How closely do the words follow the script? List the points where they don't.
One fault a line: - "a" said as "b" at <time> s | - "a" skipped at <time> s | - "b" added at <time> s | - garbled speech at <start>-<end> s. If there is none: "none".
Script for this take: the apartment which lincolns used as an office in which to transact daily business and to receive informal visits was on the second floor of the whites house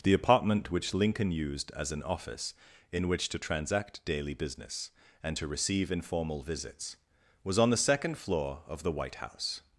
- "lincolns" said as "lincoln" at 0.9 s
- "whites" said as "white" at 8.9 s